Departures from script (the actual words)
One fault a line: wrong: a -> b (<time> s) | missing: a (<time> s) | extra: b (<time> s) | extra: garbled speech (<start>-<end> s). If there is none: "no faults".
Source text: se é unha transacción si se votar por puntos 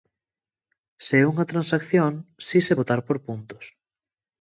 no faults